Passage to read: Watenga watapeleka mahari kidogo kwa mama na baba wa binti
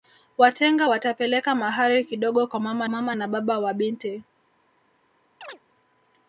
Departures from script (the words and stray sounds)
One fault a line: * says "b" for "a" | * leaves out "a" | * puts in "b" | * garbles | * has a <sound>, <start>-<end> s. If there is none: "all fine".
* puts in "mama"
* has a chirp, 5.4-5.6 s